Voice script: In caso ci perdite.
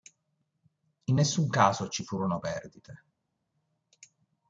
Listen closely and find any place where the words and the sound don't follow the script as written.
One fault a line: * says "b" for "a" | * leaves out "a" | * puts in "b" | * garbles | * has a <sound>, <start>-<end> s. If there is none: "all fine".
* puts in "nessun"
* puts in "furono"